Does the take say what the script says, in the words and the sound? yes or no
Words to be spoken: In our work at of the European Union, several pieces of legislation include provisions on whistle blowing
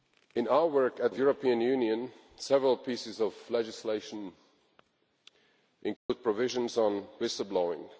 no